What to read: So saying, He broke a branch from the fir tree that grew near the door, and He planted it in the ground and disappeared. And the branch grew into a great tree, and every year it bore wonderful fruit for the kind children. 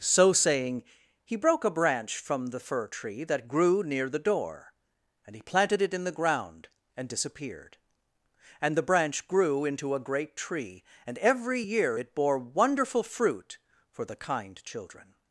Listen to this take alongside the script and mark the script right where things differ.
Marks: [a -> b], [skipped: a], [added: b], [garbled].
So saying, He broke a branch from the fir tree that grew near the door, and He planted it in the ground and disappeared. And the branch grew into a great tree, and every year it bore wonderful fruit for the kind children.